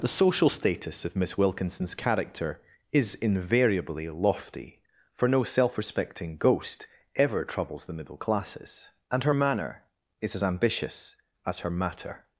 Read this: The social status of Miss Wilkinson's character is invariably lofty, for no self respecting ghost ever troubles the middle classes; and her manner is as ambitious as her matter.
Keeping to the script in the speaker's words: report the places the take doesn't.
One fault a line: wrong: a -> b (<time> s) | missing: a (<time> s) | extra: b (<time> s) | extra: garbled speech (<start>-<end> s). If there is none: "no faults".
no faults